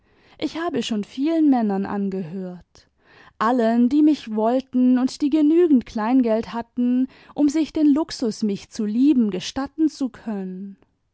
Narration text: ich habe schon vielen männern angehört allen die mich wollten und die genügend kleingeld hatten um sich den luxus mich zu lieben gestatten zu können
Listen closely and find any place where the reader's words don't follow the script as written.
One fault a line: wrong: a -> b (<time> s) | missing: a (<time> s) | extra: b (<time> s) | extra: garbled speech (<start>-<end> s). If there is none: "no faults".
no faults